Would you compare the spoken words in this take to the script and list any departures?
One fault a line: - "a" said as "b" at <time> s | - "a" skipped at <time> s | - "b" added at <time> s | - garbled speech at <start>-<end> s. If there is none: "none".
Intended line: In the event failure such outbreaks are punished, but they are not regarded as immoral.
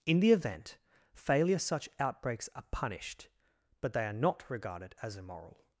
none